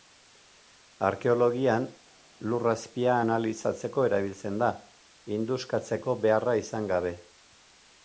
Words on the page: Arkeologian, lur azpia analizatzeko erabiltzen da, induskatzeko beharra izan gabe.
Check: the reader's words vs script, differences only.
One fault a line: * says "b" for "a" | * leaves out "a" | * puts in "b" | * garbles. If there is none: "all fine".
all fine